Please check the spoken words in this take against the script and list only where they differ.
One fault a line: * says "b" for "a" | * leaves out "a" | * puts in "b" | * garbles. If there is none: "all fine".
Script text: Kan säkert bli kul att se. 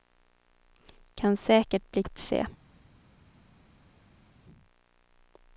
* leaves out "kul"